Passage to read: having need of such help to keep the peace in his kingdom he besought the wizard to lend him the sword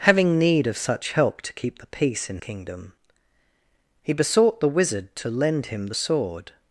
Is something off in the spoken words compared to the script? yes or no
yes